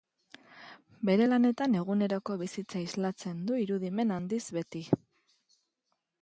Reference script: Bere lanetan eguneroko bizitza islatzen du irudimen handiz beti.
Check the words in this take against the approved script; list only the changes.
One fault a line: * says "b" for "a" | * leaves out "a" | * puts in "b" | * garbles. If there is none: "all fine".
all fine